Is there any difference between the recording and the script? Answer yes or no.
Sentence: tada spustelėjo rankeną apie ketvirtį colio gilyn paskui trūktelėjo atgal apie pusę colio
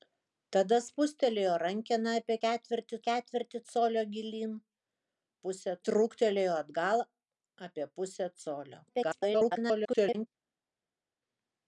yes